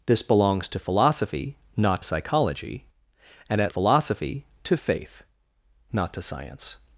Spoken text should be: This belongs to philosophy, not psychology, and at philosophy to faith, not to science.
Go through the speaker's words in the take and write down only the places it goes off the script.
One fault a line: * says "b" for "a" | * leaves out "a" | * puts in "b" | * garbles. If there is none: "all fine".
all fine